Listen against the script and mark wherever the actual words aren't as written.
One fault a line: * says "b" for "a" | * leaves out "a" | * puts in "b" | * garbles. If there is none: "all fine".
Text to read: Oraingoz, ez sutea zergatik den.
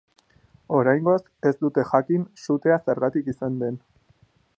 * puts in "dute jakin"
* puts in "izan"